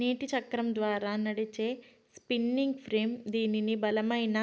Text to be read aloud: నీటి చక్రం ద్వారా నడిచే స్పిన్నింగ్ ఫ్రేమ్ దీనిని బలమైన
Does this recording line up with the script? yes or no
yes